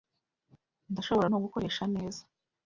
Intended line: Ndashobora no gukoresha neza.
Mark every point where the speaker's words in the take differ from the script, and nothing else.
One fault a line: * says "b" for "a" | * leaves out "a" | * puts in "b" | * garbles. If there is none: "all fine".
all fine